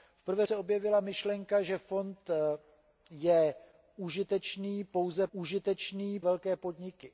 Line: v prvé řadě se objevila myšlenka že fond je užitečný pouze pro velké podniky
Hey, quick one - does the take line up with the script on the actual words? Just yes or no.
no